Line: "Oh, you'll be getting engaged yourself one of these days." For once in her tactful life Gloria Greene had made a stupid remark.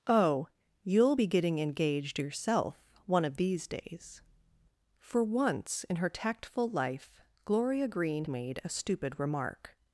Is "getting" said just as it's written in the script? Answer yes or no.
yes